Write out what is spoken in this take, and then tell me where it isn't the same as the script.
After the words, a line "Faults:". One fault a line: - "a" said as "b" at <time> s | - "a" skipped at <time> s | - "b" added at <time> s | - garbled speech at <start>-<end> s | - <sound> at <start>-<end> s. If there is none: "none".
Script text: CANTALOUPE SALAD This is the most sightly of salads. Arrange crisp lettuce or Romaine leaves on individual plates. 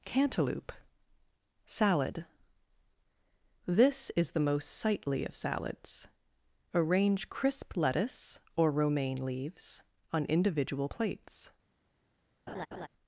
CANTALOUPE SALAD This is the most sightly of salads. Arrange crisp lettuce or Romaine leaves on individual plates.
Faults:
- laugh at 12.5-12.9 s